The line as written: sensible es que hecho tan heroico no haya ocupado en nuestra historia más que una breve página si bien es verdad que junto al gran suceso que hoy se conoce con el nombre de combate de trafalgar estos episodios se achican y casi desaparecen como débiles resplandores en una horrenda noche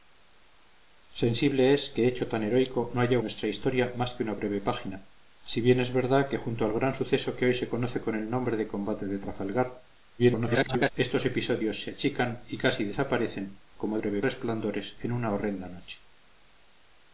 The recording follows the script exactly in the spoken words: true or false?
false